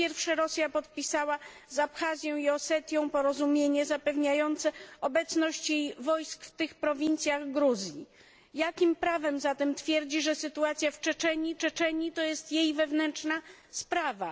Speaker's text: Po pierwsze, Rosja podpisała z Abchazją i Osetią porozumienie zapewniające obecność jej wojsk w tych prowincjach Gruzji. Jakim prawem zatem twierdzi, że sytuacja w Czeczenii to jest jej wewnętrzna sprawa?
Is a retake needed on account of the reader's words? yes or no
yes